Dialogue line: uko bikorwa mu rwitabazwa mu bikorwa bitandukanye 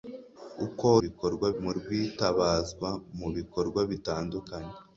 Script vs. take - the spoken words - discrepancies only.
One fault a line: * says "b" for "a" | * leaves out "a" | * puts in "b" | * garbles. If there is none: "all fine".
all fine